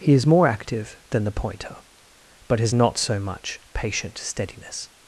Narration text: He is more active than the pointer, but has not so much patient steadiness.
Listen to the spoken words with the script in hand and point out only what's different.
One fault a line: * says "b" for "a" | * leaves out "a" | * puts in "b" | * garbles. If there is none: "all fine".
all fine